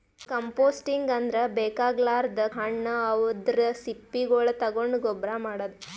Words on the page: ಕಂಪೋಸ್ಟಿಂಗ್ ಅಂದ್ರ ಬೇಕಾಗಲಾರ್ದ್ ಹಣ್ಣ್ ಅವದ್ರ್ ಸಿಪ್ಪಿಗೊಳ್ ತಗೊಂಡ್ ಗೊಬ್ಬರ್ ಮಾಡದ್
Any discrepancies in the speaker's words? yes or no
no